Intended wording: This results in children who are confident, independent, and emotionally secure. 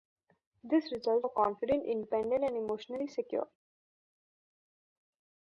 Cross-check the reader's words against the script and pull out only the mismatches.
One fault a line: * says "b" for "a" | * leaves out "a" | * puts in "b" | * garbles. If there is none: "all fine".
* leaves out "in children who"